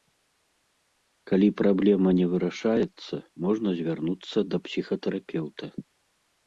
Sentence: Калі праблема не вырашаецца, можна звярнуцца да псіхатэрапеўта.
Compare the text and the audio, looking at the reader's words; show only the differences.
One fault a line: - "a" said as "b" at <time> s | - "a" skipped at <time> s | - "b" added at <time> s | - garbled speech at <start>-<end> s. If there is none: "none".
none